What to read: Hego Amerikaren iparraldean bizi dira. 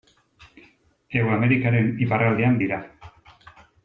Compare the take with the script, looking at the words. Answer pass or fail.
fail